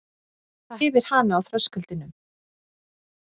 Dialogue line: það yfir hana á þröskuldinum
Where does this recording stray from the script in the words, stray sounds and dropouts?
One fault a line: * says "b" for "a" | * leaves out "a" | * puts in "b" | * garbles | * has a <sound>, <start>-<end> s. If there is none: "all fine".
all fine